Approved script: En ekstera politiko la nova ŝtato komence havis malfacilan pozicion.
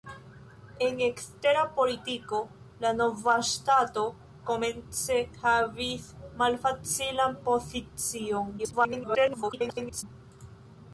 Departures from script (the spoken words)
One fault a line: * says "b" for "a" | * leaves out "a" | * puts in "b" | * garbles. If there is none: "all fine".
* garbles